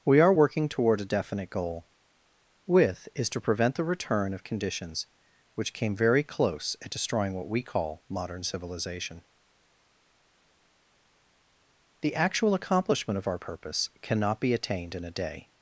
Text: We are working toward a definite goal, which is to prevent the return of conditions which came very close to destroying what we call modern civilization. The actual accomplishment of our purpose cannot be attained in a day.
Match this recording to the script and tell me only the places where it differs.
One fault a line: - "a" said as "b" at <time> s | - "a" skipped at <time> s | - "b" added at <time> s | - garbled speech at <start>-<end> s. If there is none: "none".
- "which" said as "with" at 2.6 s
- "to" said as "at" at 6.8 s